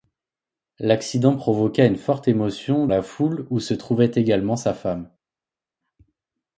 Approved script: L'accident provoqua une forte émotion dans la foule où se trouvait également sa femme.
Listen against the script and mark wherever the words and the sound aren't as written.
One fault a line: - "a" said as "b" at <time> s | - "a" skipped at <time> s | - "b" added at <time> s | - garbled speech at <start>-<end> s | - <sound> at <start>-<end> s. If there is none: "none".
- "dans" skipped at 2.9 s